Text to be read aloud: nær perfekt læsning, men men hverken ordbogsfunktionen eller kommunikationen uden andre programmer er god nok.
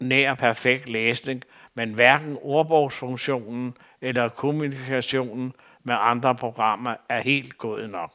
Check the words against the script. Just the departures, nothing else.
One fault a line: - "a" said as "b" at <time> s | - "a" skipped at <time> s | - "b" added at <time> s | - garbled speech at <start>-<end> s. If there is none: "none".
- "men" skipped at 1.9 s
- "uden" said as "med" at 5.8 s
- "helt" added at 7.2 s